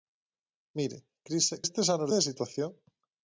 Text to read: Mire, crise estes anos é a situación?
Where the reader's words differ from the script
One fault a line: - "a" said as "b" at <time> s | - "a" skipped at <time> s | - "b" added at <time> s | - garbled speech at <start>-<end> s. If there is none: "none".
none